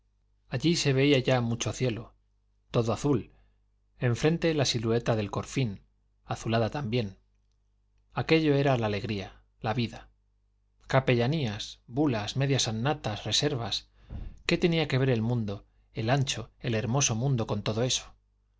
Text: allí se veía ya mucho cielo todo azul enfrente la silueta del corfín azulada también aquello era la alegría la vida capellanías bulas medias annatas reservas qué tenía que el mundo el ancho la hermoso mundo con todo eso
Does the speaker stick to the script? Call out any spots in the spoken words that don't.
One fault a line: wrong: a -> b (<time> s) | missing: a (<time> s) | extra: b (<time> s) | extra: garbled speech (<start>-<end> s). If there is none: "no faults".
extra: ver (15.0 s)
wrong: la -> el (16.6 s)